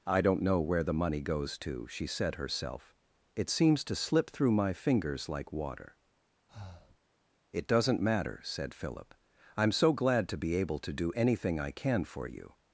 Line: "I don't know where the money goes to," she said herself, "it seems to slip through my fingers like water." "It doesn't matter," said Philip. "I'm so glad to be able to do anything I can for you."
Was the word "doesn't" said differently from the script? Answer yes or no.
no